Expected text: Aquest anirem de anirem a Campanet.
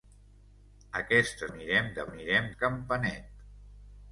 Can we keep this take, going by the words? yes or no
yes